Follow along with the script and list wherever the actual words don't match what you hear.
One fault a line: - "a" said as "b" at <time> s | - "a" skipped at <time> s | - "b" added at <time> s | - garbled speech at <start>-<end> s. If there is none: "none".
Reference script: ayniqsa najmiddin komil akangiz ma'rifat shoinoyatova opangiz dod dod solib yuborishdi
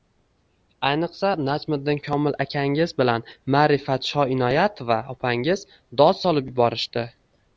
- "bilan" added at 3.0 s
- "dod" skipped at 6.2 s